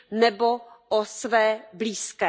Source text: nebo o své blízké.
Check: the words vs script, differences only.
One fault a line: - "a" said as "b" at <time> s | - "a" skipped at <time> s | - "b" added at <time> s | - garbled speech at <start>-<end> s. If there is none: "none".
none